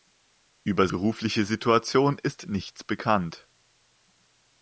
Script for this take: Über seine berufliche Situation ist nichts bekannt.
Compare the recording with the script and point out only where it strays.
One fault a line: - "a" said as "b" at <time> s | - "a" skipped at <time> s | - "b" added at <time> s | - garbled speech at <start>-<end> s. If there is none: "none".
- "seine" skipped at 0.9 s